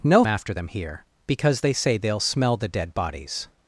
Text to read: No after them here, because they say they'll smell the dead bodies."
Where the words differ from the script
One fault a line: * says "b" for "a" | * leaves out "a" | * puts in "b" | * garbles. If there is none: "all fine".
all fine